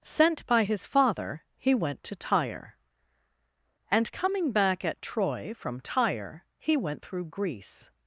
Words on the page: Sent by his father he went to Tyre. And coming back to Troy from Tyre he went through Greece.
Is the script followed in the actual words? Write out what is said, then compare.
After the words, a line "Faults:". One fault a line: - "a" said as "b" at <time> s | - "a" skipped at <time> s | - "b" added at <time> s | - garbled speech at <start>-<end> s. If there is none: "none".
Sent by his father he went to Tyre. And coming back at Troy from Tyre he went through Greece.
Faults:
- "to" said as "at" at 4.8 s